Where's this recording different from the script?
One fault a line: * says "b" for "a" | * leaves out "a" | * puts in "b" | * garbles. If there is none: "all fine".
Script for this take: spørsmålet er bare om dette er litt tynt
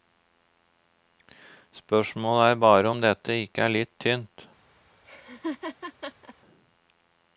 * puts in "ikke"